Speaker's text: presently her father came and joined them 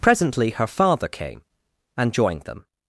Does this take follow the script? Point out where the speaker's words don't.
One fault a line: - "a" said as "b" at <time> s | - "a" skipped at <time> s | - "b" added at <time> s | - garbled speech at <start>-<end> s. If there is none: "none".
none